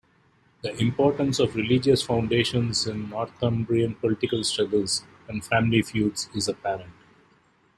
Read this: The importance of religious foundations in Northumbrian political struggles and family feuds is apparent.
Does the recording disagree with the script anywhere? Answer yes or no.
no